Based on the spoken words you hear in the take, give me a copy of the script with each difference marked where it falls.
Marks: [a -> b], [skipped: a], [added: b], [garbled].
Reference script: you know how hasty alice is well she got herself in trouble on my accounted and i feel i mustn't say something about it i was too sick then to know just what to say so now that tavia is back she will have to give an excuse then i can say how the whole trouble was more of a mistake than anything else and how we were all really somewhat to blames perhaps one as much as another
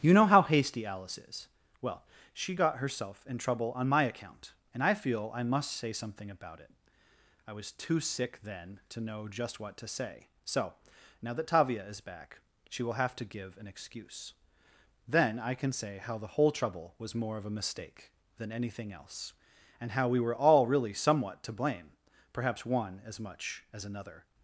you know how hasty alice is well she got herself in trouble on my [accounted -> account] and i feel i [mustn't -> must] say something about it i was too sick then to know just what to say so now that tavia is back she will have to give an excuse then i can say how the whole trouble was more of a mistake than anything else and how we were all really somewhat to [blames -> blame] perhaps one as much as another